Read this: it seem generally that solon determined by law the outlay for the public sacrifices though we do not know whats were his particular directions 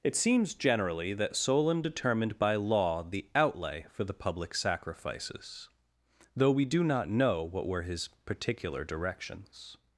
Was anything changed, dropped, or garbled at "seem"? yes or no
yes